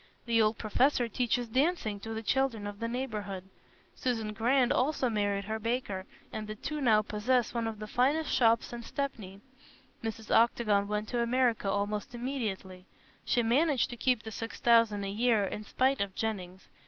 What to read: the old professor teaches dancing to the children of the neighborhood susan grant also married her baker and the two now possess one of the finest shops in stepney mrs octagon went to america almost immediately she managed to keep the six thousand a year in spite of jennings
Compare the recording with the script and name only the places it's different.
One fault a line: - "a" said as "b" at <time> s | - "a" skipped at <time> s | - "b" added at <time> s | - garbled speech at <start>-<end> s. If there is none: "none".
none